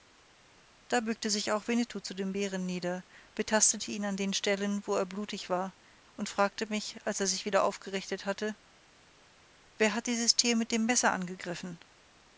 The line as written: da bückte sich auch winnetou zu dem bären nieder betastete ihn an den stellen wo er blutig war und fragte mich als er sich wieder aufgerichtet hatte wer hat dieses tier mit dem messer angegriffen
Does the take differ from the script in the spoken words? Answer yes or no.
no